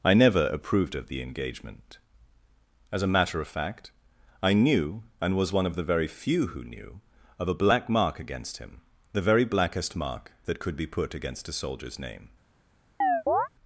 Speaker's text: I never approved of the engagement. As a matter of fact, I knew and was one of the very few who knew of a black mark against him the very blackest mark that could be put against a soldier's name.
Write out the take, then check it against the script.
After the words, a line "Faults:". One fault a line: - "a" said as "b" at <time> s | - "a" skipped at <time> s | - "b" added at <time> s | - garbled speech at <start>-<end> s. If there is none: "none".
I never approved of the engagement. As a matter of fact, I knew and was one of the very few who knew of a black mark against him the very blackest mark that could be put against a soldier's name.
Faults:
none